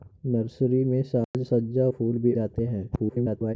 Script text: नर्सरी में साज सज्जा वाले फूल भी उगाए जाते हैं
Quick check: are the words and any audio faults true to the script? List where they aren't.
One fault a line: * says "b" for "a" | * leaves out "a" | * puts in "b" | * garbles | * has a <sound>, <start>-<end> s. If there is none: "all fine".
* has a dropout, 1.2-1.3 s
* leaves out "वाले"
* leaves out "उगाए"
* garbles